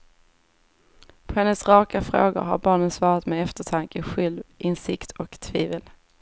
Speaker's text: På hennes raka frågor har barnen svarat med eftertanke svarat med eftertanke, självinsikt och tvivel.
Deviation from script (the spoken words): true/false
true